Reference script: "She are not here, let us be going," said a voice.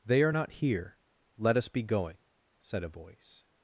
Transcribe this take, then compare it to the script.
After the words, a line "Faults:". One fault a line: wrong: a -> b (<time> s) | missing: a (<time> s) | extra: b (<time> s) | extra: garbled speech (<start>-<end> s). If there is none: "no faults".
"They are not here, let us be going," said a voice.
Faults:
wrong: She -> They (0.1 s)